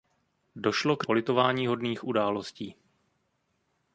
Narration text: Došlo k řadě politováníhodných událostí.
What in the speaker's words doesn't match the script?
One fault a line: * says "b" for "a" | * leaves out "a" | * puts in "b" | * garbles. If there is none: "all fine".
* leaves out "řadě"